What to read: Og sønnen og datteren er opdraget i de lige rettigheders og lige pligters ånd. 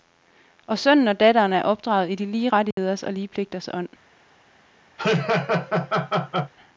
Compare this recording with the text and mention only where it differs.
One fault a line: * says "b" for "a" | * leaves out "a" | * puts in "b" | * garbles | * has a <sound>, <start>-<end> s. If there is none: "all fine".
* has a dropout, 2.7-2.8 s
* has a laugh, 5.0-6.5 s